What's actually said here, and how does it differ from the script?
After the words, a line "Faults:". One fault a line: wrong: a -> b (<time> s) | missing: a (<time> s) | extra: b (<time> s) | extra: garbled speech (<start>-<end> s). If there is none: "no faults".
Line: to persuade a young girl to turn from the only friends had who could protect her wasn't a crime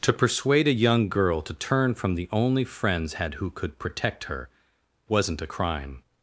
to persuade a young girl to turn from the only friends had who could protect her wasn't a crime
Faults:
no faults